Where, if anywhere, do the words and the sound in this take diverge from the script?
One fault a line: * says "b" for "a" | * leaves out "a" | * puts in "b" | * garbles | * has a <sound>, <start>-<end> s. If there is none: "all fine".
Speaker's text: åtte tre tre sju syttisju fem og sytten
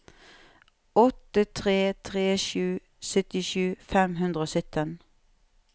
* puts in "hundre"